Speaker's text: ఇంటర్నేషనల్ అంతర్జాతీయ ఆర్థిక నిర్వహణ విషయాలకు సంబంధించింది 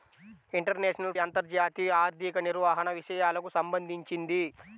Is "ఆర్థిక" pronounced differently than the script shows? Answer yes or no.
no